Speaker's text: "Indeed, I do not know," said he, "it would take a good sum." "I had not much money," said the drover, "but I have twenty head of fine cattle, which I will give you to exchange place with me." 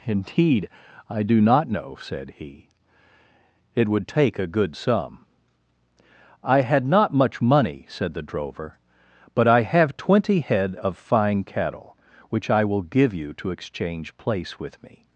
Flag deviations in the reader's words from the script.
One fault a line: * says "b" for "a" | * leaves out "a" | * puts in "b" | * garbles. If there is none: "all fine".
all fine